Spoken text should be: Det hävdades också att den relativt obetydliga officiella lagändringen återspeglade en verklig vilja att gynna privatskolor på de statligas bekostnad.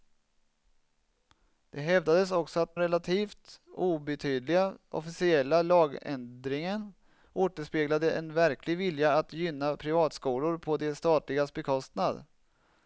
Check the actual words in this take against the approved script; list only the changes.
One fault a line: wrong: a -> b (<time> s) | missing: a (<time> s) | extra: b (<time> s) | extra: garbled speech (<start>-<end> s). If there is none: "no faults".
missing: den (2.8 s)